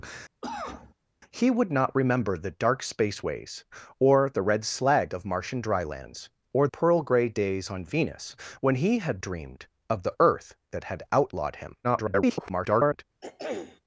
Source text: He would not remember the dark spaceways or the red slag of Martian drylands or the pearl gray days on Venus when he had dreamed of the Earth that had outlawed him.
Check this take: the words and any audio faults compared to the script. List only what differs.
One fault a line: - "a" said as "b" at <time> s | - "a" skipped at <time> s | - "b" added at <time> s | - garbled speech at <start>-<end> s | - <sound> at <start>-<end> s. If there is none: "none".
- cough at 0.4-0.9 s
- "the" skipped at 6.7 s
- garbled speech at 11.8-13.0 s
- throat clearing at 13.2-13.8 s